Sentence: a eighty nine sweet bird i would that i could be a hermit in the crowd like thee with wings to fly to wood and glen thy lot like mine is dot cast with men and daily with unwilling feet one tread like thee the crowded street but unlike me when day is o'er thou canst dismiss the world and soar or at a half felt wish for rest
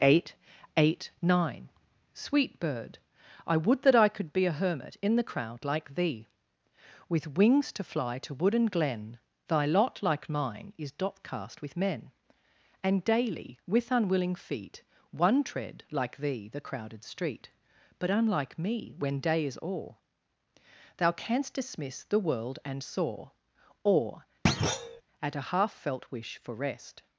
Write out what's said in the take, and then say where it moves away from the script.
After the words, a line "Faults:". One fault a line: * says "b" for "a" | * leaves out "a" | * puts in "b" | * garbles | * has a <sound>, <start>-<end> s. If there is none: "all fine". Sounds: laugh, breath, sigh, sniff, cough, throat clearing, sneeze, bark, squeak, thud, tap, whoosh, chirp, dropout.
eight eight nine sweet bird i would that i could be a hermit in the crowd like thee with wings to fly to wood and glen thy lot like mine is dot cast with men and daily with unwilling feet one tread like thee the crowded street but unlike me when day is o'er thou canst dismiss the world and soar or at a half felt wish for rest
Faults:
* says "eight eight" for "a eighty"
* has a thud, 24.5-25.0 s